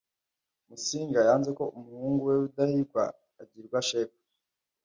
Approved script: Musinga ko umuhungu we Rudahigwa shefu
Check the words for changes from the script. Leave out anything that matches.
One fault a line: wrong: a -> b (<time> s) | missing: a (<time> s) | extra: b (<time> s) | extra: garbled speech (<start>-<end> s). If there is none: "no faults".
extra: yanze (1.3 s)
extra: agirwa (3.4 s)